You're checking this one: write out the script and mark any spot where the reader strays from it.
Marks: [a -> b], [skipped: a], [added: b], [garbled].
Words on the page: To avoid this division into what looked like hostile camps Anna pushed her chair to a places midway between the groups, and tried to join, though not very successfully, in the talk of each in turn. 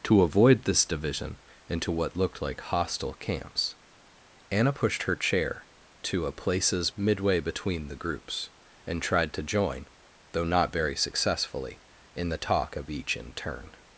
To avoid this division into what looked like hostile camps Anna pushed her chair to a places midway between the groups, and tried to join, though not very successfully, in the talk of each in turn.